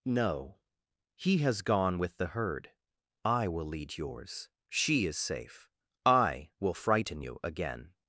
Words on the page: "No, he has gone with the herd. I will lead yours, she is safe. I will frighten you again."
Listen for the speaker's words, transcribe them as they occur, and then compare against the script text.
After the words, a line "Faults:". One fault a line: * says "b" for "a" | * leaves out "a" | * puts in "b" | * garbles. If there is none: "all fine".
"No, he has gone with the herd. I will lead yours, she is safe. I will frighten you again."
Faults:
all fine